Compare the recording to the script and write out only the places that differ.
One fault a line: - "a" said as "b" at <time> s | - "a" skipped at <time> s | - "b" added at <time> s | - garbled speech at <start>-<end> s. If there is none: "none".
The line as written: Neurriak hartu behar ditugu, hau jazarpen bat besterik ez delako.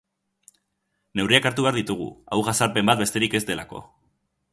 none